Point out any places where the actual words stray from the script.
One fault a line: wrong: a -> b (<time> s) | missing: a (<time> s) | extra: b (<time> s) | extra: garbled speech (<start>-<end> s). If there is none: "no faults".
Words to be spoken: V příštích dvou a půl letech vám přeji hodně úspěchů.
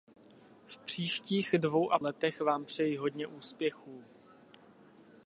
missing: půl (2.0 s)